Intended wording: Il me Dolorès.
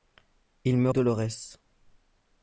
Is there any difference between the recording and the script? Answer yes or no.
no